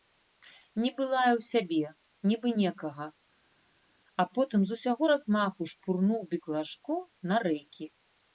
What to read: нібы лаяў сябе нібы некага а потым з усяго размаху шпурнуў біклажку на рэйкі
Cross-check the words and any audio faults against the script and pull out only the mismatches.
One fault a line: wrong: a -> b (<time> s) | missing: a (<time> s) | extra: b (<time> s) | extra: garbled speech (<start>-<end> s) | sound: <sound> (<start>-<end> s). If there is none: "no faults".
no faults